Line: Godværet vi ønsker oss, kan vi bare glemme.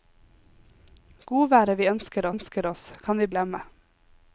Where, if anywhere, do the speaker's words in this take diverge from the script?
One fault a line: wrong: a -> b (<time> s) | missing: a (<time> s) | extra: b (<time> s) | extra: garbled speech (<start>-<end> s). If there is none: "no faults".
extra: ønsker (2.3 s)
missing: bare (3.3 s)